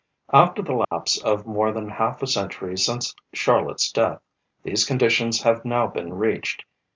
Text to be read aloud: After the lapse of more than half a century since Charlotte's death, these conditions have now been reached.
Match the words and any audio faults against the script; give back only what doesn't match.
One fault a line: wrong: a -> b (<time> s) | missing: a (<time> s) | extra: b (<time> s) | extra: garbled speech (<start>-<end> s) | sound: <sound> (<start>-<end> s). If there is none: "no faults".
sound: dropout (0.8-0.9 s)